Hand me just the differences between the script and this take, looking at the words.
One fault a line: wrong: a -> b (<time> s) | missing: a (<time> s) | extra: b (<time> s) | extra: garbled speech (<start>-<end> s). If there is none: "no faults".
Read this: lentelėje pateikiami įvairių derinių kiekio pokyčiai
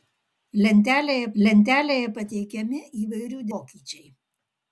extra: lentelėje (1.4 s)
missing: derinių kiekio (3.4 s)